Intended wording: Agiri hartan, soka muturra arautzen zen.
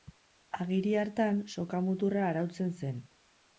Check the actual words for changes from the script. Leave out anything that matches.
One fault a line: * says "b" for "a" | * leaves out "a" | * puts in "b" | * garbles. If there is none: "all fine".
all fine